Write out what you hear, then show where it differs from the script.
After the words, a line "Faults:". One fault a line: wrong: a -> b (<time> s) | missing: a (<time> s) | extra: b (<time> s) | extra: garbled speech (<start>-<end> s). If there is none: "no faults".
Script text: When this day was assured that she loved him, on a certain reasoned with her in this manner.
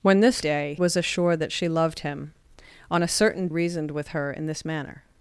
When this day was assured that she loved him, on a certain reasoned with her in this manner.
Faults:
no faults